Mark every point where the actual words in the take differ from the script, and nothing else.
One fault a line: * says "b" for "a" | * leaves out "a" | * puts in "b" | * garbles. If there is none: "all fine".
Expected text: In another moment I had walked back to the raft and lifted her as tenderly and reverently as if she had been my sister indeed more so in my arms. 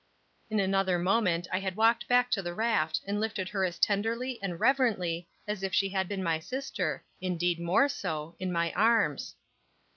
all fine